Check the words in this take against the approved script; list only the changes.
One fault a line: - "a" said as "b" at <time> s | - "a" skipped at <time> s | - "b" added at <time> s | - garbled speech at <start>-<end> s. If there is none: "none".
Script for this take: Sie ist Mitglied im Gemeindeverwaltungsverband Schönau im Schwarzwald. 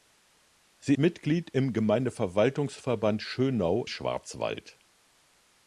- "ist" skipped at 0.9 s
- "im" skipped at 3.8 s